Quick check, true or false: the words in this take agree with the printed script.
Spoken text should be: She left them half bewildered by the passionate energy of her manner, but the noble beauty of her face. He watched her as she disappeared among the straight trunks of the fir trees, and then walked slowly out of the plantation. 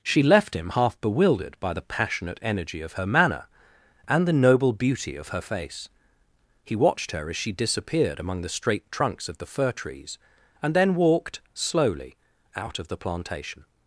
false